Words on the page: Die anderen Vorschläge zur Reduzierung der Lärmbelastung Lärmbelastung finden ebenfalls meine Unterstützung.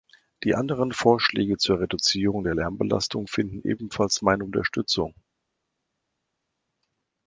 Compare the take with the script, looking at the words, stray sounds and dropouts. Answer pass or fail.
fail